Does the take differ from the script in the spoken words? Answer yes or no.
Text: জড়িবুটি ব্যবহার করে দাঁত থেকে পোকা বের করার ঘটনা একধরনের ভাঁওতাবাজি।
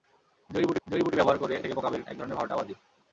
yes